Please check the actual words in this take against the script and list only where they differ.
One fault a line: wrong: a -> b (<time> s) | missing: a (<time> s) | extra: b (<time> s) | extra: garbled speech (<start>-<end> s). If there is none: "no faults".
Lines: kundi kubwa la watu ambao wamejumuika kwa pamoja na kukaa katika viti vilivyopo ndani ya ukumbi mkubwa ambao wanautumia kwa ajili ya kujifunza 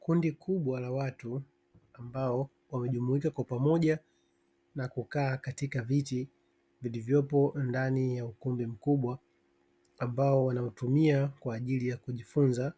no faults